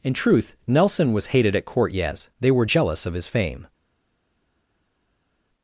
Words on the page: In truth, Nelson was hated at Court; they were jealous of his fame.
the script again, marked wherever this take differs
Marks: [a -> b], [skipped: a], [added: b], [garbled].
In truth, Nelson was hated at Court; [added: yes] they were jealous of his fame.